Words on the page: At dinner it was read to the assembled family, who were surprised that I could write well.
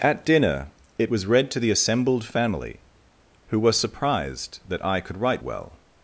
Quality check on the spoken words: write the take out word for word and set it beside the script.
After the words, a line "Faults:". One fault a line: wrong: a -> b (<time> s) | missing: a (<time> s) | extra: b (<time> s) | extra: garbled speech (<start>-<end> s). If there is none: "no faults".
At dinner it was read to the assembled family, who were surprised that I could write well.
Faults:
no faults